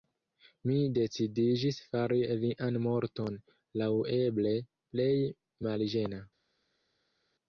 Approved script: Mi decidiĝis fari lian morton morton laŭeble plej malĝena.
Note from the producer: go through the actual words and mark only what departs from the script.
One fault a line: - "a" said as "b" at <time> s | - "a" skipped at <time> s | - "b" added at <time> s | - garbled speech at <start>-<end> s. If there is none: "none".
- "morton" skipped at 3.4 s